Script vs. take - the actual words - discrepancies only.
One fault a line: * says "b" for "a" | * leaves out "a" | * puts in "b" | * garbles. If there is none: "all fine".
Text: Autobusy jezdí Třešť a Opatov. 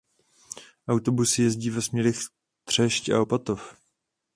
* puts in "ve směrech"